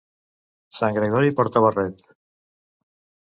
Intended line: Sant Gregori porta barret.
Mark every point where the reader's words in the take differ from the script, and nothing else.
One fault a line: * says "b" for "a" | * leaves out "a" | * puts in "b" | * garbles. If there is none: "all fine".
all fine